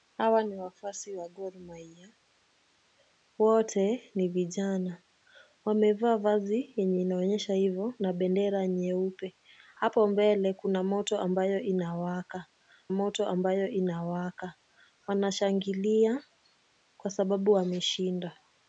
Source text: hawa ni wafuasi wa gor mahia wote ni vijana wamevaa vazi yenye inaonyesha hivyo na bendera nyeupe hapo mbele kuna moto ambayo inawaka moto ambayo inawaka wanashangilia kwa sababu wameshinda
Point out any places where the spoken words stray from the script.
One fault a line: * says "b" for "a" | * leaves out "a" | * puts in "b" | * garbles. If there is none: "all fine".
all fine